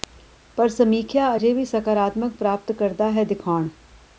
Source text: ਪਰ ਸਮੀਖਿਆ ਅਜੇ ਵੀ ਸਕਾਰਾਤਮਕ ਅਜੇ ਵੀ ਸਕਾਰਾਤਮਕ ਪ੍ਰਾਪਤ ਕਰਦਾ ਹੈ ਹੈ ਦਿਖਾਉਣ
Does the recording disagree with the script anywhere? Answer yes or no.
yes